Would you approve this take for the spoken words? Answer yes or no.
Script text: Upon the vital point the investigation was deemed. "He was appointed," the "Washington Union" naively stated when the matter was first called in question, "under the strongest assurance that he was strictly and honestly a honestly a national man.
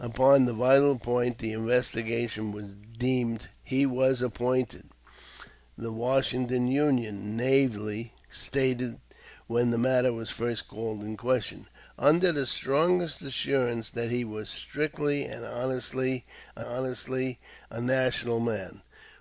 yes